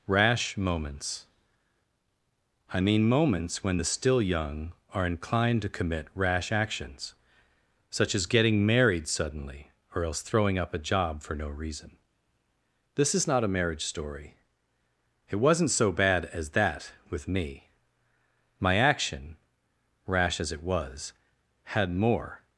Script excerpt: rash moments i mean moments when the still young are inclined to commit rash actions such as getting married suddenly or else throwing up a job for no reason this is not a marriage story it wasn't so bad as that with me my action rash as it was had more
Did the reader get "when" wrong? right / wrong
right